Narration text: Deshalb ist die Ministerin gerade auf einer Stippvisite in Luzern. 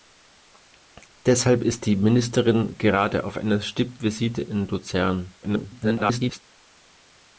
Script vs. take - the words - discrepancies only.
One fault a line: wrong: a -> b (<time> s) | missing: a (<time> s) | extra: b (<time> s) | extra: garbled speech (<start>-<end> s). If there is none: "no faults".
extra: garbled speech (5.4-6.4 s)